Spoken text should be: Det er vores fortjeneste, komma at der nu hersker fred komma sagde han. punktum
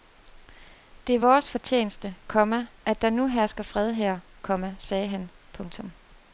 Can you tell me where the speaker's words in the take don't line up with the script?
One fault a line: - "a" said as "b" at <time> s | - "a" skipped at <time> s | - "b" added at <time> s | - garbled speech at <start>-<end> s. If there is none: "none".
- "her" added at 3.9 s